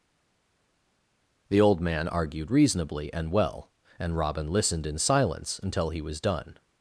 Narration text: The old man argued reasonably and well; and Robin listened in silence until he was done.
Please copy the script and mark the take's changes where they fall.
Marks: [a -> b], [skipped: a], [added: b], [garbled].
The old man argued reasonably and well; and Robin listened in silence until he was done.